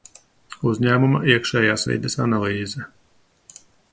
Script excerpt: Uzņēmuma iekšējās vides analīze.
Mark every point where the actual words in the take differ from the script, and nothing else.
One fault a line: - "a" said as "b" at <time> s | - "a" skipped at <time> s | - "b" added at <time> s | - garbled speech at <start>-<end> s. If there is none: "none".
none